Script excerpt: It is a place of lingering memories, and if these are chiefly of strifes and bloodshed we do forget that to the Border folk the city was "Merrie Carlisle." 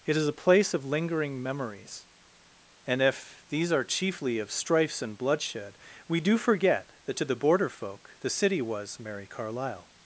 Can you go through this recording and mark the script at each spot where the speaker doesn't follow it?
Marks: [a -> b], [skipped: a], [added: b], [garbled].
It is a place of lingering memories, and if these are chiefly of strifes and bloodshed we do forget that to the Border folk the city was "Merrie Carlisle."